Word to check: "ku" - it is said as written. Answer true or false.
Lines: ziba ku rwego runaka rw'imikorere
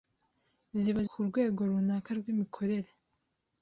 true